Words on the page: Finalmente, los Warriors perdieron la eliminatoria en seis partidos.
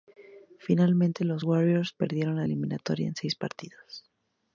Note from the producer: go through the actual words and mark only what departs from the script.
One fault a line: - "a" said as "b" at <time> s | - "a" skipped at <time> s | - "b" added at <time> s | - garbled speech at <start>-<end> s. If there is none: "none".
none